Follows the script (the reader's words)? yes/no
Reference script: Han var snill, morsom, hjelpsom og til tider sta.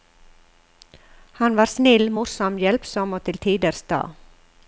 yes